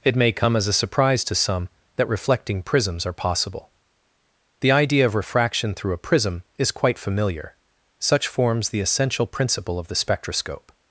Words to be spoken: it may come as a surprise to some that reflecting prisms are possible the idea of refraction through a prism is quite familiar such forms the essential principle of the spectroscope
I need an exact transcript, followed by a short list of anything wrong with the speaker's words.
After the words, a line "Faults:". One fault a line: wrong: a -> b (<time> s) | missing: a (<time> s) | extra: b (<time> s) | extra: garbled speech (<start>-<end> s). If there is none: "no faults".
it may come as a surprise to some that reflecting prisms are possible the idea of refraction through a prism is quite familiar such forms the essential principle of the spectroscope
Faults:
no faults